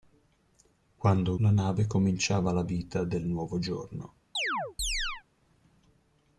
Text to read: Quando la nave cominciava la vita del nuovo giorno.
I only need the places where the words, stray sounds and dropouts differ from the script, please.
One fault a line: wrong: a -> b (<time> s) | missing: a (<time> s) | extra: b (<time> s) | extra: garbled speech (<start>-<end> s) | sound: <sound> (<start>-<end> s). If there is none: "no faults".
sound: chirp (4.4-5.2 s)